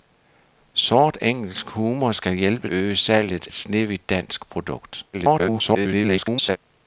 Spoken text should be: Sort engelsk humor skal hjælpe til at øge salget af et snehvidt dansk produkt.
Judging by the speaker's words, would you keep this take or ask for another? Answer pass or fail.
fail